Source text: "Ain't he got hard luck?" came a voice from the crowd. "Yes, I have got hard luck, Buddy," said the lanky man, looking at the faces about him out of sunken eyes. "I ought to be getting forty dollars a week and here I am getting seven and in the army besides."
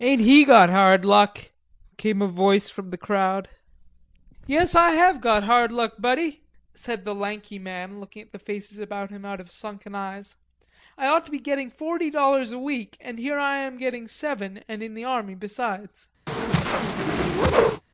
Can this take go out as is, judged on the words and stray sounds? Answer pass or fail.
fail